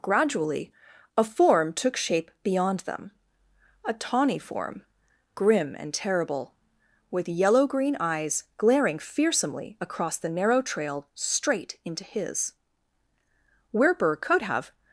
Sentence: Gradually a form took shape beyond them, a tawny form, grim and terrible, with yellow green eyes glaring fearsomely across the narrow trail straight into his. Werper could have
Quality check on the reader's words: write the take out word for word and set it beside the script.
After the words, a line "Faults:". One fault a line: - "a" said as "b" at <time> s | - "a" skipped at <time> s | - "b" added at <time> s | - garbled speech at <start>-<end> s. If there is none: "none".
Gradually a form took shape beyond them, a tawny form, grim and terrible, with yellow green eyes glaring fearsomely across the narrow trail straight into his. Werper could have
Faults:
none